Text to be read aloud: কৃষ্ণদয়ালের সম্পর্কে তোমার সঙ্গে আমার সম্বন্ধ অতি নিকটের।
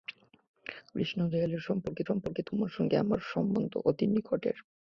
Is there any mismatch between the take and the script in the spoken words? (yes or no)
yes